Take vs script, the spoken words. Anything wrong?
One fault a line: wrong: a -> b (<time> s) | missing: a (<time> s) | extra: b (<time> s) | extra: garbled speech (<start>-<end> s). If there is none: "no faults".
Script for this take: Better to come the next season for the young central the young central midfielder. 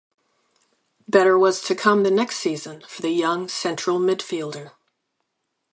extra: was (1.4 s)
missing: the young central (4.0 s)